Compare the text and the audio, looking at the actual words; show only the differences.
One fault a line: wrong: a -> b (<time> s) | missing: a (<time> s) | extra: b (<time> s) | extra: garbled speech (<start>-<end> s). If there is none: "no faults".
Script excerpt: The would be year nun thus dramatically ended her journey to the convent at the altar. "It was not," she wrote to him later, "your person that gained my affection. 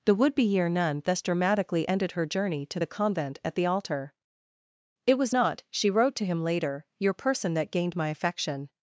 no faults